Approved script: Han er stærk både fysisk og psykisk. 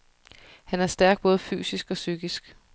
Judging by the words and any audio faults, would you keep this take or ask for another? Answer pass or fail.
pass